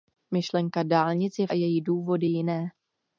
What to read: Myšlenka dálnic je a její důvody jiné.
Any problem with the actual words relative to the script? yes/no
no